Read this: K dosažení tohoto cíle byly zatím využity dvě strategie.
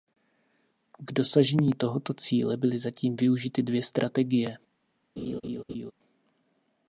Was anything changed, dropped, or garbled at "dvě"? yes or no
no